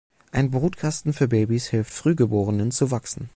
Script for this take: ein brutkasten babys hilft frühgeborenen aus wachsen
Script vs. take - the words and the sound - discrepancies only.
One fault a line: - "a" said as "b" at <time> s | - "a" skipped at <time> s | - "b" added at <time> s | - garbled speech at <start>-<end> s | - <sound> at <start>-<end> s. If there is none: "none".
- "für" added at 1.1 s
- "aus" said as "zu" at 2.7 s